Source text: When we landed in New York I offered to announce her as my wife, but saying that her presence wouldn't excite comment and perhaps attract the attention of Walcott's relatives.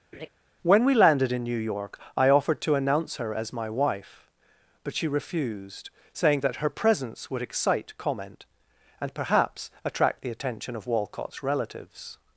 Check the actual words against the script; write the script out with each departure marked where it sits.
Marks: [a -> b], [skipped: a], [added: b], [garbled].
When we landed in New York I offered to announce her as my wife, but [added: she refused] saying that her presence [wouldn't -> would] excite comment and perhaps attract the attention of Walcott's relatives.